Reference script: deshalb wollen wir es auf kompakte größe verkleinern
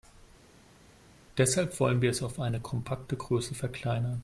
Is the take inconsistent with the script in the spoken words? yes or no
yes